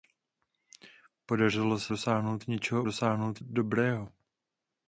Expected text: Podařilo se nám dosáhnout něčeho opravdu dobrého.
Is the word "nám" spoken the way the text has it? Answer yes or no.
no